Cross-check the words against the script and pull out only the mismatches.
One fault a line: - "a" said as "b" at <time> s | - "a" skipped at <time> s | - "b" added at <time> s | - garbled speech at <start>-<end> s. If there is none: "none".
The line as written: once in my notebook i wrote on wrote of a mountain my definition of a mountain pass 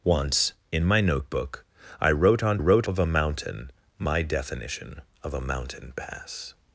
none